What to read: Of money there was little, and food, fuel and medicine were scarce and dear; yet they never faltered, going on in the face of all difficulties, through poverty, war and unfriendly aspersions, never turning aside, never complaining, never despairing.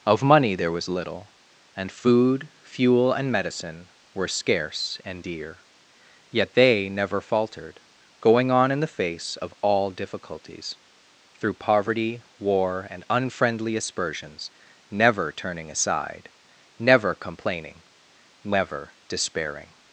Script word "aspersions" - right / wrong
right